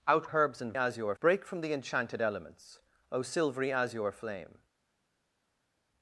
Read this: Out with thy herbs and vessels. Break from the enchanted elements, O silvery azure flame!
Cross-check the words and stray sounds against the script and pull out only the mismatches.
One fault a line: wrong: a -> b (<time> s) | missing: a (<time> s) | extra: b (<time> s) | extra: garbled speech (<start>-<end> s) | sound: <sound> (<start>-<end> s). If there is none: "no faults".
missing: with thy (0.3 s)
wrong: vessels -> azure (0.8 s)